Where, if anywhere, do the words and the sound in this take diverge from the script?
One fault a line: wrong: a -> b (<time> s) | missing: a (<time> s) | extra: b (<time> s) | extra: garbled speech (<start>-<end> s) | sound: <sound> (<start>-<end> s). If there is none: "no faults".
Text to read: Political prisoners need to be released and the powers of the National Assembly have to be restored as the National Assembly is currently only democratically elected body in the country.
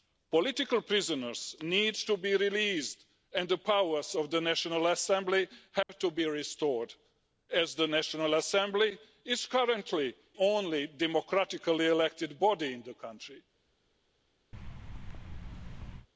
sound: dropout (5.8-5.9 s)
sound: thud (14.5-16.1 s)